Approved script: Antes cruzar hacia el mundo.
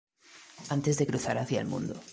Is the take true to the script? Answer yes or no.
no